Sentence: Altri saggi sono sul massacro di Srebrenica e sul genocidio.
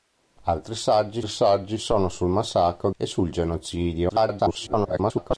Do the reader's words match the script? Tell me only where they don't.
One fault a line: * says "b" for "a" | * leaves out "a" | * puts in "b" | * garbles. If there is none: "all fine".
* puts in "saggi"
* leaves out "di Srebrenica"
* garbles